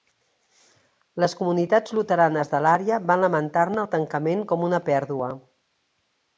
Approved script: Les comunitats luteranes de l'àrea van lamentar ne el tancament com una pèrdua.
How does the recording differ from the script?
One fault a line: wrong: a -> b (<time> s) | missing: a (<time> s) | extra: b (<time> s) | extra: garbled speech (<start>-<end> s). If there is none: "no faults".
no faults